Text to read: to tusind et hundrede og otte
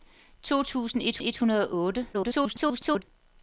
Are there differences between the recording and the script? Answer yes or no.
yes